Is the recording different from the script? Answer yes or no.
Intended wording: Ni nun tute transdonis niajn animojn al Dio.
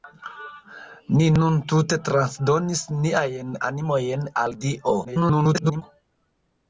yes